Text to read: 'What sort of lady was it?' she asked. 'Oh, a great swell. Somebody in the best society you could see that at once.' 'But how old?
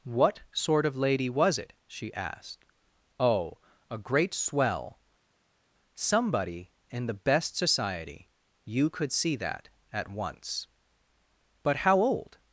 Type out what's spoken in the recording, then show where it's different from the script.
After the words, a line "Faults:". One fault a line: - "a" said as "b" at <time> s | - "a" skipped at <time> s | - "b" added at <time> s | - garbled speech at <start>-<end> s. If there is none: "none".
'What sort of lady was it?' she asked. 'Oh, a great swell. Somebody in the best society you could see that at once.' 'But how old?
Faults:
none